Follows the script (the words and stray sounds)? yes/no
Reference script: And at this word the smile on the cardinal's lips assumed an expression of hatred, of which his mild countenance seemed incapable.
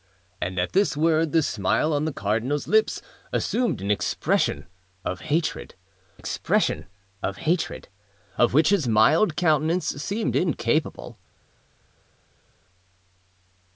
no